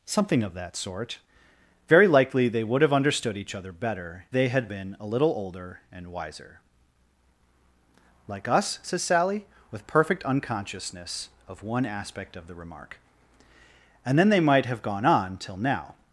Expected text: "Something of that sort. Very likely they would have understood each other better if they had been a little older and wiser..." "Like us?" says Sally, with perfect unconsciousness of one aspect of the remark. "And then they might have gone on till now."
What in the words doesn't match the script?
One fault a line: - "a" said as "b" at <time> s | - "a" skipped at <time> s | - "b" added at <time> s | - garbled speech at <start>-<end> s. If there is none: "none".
- "if" skipped at 4.2 s